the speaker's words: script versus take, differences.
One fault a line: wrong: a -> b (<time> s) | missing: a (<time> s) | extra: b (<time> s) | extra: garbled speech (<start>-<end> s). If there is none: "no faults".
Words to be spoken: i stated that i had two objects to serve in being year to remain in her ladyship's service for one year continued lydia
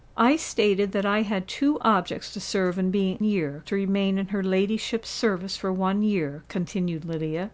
no faults